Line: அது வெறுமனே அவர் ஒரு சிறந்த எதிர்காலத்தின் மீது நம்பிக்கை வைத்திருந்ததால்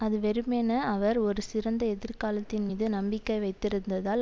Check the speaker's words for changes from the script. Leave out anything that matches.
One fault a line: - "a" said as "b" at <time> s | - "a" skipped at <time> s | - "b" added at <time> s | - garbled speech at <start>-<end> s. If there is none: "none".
none